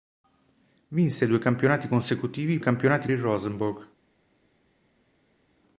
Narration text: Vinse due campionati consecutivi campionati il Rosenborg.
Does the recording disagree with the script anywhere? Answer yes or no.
no